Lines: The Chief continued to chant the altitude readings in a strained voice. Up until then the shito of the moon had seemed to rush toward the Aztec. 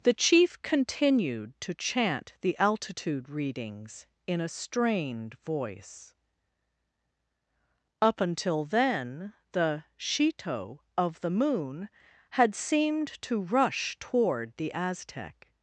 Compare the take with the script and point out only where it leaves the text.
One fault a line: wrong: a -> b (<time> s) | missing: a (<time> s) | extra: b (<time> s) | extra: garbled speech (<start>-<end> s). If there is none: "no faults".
no faults